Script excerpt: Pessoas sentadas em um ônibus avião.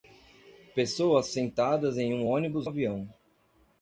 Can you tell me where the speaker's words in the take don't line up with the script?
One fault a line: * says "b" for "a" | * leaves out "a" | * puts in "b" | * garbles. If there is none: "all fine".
all fine